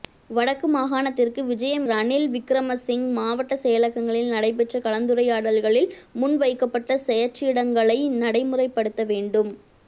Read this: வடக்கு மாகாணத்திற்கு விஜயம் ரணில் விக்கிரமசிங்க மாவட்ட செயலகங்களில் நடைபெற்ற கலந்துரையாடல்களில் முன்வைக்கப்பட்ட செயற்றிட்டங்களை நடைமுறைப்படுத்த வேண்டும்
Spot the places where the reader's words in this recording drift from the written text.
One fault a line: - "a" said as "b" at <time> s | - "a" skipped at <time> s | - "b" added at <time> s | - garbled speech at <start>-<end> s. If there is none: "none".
none